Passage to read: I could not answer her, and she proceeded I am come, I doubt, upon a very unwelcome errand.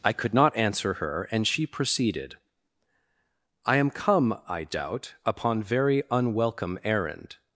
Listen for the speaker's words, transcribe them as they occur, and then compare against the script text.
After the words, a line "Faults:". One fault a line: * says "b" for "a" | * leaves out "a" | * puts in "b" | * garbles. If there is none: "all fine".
I could not answer her, and she proceeded I am come, I doubt, upon very unwelcome errand.
Faults:
* leaves out "a"